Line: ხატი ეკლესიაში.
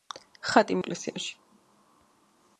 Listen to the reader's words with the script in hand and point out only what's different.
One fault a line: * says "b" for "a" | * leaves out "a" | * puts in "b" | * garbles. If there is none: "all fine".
all fine